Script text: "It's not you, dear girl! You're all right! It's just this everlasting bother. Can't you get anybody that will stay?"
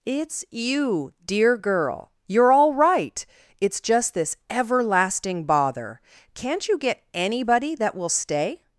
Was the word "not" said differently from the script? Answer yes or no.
yes